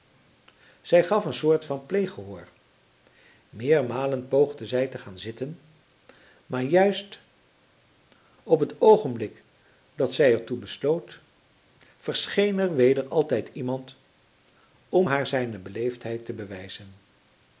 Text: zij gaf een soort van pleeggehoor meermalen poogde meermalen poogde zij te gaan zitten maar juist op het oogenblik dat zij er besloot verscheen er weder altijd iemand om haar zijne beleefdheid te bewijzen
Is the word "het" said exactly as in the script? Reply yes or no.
yes